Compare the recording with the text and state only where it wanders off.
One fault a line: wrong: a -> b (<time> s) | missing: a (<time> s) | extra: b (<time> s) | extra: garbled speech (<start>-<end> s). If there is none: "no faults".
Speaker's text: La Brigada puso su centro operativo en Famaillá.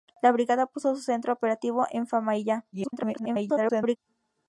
extra: garbled speech (2.7-4.0 s)